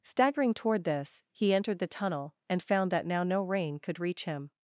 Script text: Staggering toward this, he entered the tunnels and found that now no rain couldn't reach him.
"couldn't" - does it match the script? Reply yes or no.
no